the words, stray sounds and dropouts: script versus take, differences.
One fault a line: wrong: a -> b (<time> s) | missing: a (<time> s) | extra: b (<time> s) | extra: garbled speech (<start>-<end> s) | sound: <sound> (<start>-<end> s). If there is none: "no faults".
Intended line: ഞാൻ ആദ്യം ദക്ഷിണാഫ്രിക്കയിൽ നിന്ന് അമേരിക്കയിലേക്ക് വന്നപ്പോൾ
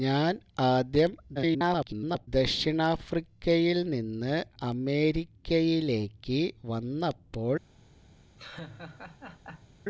extra: garbled speech (1.3-2.3 s)
sound: laugh (8.4-9.7 s)